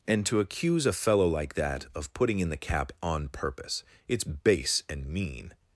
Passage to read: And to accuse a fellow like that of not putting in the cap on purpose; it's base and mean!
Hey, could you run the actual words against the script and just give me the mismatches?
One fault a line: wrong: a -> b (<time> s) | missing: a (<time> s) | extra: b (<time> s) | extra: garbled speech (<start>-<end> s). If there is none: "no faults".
missing: not (2.1 s)